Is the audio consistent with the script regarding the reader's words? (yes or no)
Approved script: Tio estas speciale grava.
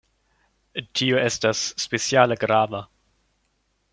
yes